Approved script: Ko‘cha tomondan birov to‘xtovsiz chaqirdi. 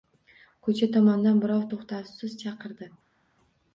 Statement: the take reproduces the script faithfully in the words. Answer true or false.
true